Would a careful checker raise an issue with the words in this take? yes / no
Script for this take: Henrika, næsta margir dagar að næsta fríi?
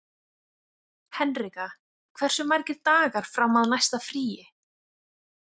yes